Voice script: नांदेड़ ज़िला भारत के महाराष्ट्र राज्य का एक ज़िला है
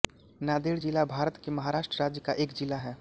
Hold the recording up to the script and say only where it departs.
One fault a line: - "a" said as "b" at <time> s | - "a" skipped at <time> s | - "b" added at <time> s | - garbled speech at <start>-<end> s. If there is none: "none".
none